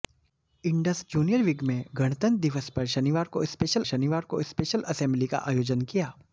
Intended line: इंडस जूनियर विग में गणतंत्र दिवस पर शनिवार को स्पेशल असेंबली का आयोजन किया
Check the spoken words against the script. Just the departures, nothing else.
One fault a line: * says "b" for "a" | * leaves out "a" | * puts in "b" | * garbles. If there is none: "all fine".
* puts in "शनिवार को स्पेशल"